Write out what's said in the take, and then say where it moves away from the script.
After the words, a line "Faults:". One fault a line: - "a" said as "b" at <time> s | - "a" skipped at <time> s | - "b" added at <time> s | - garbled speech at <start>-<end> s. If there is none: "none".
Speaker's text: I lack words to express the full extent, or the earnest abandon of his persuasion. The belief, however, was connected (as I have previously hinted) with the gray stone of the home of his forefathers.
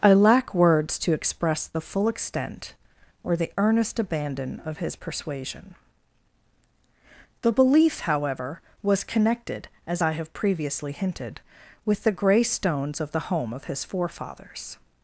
I lack words to express the full extent, or the earnest abandon of his persuasion. The belief, however, was connected (as I have previously hinted) with the gray stones of the home of his forefathers.
Faults:
- "stone" said as "stones" at 12.4 s